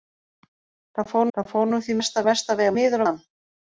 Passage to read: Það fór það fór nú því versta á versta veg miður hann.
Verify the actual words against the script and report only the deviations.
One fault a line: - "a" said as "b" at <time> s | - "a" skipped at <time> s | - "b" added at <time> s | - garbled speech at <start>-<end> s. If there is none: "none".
none